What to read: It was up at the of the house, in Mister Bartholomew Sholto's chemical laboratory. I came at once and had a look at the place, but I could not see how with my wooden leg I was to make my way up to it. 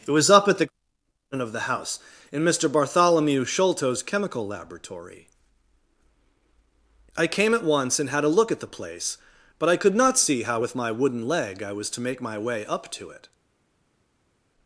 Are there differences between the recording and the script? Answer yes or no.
no